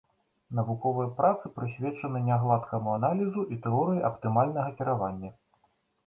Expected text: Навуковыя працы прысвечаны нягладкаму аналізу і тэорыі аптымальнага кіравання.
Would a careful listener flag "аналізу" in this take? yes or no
no